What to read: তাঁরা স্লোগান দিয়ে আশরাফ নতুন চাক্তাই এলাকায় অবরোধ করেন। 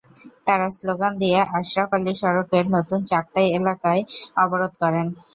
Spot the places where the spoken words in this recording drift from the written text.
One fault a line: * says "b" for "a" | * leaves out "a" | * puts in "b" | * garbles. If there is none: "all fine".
* puts in "আলী সড়কের"